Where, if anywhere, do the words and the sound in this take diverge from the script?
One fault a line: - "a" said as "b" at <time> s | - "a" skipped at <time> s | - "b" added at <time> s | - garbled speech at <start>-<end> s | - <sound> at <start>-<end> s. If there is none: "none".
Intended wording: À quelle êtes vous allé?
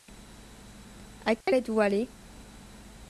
- dropout at 1.4-1.5 s